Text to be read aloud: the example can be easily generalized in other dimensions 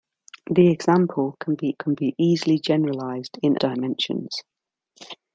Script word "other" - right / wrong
wrong